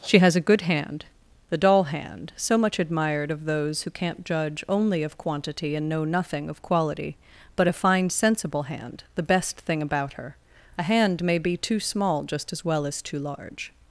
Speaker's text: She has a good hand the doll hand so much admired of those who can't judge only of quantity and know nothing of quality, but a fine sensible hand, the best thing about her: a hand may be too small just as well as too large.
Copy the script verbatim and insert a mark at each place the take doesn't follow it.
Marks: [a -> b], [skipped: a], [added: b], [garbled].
She has a good hand the doll hand so much admired of those who can't judge only of quantity and know nothing of quality, but a fine sensible hand, the best thing about her: a hand may be too small just as well as too large.